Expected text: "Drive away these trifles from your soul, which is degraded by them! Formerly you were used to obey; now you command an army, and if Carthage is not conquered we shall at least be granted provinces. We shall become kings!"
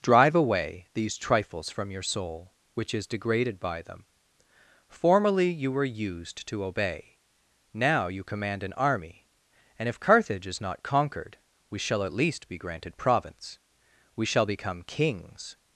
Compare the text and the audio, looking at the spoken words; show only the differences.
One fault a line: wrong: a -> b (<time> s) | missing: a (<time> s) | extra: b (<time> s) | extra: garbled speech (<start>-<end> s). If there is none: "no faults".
wrong: provinces -> province (13.0 s)